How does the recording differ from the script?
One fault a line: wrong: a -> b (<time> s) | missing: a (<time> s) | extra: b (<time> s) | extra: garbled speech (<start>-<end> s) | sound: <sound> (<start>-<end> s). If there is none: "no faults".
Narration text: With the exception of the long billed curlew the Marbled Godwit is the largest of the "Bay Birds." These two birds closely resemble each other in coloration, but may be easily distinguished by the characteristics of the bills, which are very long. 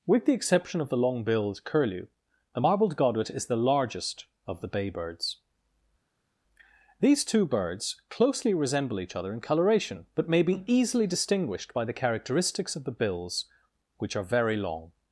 no faults